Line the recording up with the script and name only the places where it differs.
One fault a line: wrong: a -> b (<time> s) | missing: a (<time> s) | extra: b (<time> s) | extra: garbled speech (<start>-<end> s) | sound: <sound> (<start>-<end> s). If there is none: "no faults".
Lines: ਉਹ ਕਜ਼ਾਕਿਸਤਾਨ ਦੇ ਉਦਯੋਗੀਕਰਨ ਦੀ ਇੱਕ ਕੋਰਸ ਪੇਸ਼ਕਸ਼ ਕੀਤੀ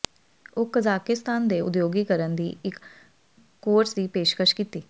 extra: ਦੀ (3.9 s)